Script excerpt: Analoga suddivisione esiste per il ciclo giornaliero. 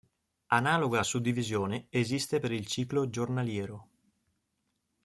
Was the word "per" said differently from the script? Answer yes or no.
no